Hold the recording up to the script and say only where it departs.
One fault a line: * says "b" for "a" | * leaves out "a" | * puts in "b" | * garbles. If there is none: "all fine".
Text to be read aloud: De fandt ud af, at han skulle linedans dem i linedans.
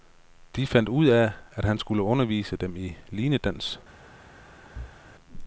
* says "undervise" for "linedans"